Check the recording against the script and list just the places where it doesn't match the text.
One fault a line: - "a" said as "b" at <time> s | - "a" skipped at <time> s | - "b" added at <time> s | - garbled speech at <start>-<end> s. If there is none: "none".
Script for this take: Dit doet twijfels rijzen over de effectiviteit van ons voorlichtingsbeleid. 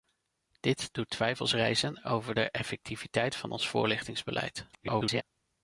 - garbled speech at 4.7-5.2 s